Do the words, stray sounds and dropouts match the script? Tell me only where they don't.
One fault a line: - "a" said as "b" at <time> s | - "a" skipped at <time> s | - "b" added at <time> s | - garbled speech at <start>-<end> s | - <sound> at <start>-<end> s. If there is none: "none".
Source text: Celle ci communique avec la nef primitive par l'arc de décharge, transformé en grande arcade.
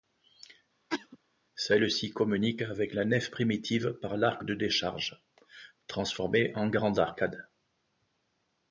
- cough at 0.9-1.2 s